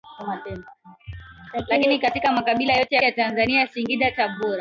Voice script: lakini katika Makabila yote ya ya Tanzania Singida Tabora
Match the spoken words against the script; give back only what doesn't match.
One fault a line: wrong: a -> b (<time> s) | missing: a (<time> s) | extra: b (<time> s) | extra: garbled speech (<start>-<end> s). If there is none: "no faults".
no faults